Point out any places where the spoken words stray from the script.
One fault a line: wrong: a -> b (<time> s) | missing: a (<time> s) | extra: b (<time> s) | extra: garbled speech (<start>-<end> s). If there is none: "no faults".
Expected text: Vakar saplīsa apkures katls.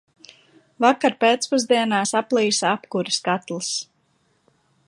extra: pēcpusdienā (1.2 s)